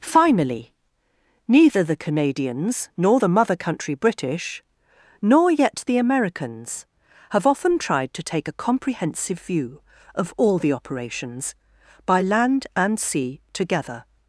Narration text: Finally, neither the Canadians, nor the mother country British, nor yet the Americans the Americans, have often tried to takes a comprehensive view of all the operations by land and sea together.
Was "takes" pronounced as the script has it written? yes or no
no